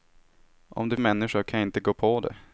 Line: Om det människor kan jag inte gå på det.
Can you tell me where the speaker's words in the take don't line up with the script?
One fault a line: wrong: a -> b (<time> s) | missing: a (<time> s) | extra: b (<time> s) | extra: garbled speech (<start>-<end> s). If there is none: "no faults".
no faults